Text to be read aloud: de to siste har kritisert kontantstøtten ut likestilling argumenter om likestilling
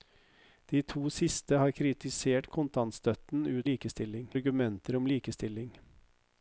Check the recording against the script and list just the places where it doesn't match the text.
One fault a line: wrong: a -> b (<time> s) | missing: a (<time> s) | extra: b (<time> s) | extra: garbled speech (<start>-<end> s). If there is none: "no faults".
no faults